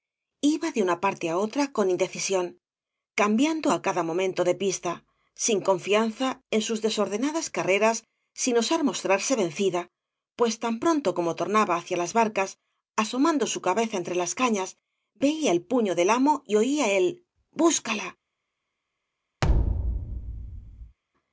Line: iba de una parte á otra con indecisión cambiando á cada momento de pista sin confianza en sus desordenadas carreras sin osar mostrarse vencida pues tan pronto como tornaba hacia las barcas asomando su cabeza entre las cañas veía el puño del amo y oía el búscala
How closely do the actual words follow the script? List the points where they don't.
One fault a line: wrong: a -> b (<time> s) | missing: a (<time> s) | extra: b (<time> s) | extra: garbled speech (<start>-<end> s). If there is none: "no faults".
no faults